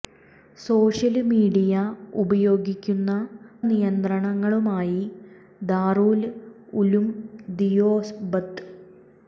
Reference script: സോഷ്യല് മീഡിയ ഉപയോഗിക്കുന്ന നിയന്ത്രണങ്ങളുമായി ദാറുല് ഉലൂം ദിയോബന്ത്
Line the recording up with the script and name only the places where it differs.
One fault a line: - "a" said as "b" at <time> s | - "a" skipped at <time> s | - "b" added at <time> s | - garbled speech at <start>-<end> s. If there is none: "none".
none